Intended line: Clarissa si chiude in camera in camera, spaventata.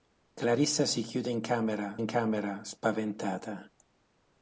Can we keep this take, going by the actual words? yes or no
yes